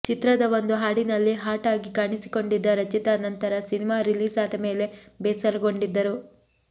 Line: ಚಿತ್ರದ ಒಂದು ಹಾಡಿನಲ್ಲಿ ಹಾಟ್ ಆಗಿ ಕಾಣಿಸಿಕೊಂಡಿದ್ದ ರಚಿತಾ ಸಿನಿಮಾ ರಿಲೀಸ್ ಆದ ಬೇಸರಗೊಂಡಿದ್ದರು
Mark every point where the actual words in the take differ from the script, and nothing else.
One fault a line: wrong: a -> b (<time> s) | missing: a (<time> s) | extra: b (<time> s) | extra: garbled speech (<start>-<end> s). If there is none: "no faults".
extra: ನಂತರ (3.2 s)
extra: ಮೇಲೆ (4.7 s)